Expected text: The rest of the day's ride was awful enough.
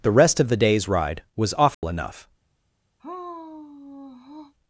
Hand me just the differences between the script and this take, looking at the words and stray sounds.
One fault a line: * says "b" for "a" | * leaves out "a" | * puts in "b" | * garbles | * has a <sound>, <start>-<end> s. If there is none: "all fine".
* has a dropout, 1.7-1.8 s
* has a sigh, 3.0-4.5 s